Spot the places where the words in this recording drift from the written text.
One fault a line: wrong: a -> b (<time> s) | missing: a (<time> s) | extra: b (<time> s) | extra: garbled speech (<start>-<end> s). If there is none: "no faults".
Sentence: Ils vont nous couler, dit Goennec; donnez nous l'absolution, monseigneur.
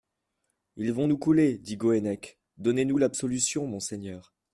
no faults